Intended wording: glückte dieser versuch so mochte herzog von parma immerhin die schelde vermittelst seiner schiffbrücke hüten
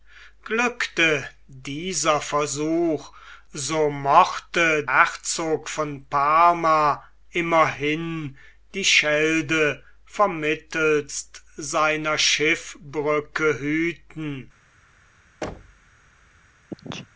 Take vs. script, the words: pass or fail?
pass